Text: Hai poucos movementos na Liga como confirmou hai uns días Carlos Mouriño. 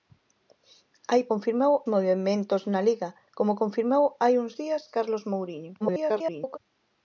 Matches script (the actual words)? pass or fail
fail